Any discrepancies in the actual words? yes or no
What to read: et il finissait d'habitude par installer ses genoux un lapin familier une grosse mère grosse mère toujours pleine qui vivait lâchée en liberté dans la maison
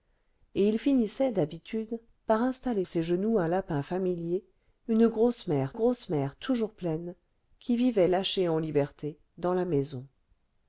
no